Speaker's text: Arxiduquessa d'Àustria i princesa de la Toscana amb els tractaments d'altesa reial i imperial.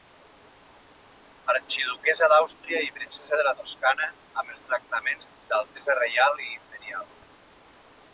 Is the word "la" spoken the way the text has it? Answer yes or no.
yes